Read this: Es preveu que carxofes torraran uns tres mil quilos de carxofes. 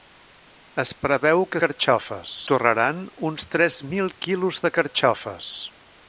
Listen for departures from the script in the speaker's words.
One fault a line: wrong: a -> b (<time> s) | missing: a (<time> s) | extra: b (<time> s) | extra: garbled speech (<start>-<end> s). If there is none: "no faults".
no faults